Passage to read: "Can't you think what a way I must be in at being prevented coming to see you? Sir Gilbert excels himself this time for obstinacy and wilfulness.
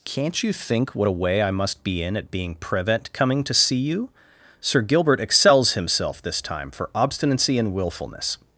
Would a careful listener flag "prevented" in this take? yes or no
yes